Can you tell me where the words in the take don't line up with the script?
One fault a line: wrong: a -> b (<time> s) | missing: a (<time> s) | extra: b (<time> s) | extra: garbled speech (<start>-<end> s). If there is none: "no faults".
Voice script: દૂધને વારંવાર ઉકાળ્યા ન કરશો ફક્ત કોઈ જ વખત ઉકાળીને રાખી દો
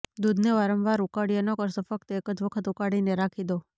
wrong: કોઈ -> એક (2.2 s)